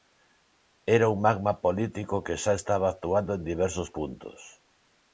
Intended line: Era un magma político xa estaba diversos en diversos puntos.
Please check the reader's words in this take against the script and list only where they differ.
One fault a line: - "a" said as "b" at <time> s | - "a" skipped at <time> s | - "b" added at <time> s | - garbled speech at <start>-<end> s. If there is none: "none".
- "que" added at 2.2 s
- "diversos" said as "actuando" at 2.9 s